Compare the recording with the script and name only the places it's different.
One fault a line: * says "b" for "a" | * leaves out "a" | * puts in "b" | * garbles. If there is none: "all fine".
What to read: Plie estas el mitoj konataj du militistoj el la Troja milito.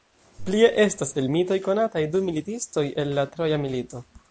all fine